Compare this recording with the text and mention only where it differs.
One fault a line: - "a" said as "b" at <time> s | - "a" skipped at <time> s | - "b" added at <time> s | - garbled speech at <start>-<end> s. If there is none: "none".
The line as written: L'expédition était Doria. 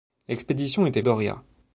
none